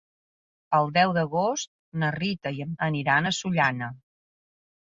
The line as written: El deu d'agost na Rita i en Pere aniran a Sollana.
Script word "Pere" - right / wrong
wrong